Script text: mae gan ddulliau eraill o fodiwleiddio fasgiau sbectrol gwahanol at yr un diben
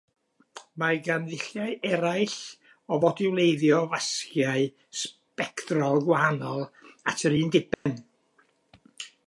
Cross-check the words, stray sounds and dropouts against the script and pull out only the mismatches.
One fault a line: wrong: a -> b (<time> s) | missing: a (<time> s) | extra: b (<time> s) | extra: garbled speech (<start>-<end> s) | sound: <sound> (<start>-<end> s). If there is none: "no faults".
sound: dropout (7.7-7.9 s)